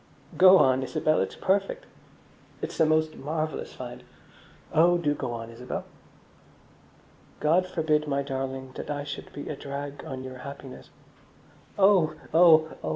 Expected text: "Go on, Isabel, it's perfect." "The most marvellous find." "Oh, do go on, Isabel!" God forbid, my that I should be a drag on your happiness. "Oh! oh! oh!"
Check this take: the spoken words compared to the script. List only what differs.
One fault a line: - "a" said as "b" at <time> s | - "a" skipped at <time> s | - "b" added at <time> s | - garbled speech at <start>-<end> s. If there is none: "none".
- "It's" added at 2.6 s
- "darling" added at 8.2 s